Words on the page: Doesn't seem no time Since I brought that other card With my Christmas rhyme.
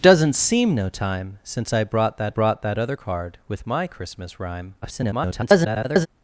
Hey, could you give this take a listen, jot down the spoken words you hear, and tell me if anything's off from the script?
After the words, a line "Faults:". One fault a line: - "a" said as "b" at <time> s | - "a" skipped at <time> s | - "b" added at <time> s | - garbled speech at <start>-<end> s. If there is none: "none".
Doesn't seem no time Since I brought that brought that other card With my Christmas rhyme. [garbled]
Faults:
- "brought that" added at 2.3 s
- garbled speech at 4.8-6.1 s